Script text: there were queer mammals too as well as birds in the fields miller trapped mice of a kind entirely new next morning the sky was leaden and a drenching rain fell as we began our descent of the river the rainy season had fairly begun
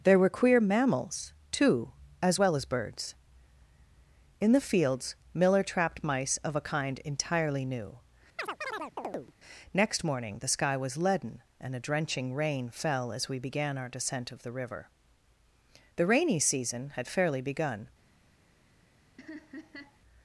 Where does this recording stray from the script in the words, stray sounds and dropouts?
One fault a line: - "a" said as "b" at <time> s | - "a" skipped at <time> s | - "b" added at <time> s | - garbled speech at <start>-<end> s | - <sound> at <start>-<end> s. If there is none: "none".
- chirp at 8.4-9.3 s
- laugh at 19.2-20.0 s